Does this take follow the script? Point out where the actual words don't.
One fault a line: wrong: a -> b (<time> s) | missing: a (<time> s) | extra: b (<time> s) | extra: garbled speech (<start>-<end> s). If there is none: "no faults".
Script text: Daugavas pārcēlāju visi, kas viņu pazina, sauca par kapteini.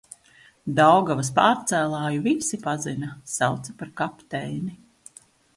missing: kas viņu (2.6 s)